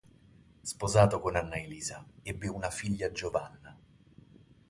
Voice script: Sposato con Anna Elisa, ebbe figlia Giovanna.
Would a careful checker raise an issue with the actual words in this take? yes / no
yes